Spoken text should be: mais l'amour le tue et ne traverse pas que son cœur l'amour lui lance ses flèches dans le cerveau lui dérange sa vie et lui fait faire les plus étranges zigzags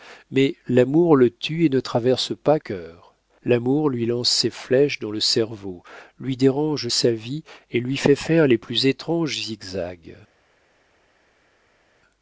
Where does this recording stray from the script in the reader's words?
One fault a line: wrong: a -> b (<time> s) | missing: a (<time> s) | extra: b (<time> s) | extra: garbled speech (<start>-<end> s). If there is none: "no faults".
missing: que son (2.6 s)